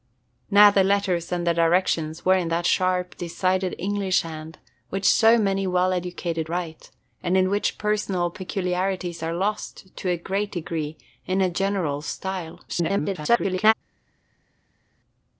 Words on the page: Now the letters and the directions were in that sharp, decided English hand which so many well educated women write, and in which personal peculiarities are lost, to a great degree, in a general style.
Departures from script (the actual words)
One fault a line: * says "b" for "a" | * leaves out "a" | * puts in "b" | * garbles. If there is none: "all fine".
* leaves out "women"
* garbles